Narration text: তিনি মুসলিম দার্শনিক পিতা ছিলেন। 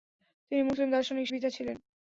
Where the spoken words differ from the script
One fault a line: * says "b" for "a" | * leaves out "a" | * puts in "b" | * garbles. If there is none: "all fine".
all fine